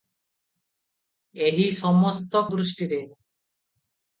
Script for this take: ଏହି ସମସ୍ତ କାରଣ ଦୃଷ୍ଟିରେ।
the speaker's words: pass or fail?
fail